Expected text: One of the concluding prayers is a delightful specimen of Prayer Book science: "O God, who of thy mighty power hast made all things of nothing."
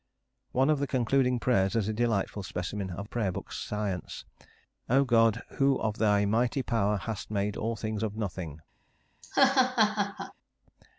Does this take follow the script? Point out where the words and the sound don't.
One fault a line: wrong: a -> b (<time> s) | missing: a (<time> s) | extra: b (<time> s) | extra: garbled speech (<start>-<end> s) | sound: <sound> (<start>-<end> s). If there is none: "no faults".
sound: laugh (9.2-10.3 s)